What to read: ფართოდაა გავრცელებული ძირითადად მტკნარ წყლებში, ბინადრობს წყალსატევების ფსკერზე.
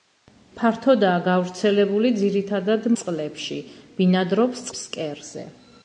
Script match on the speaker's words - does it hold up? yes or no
no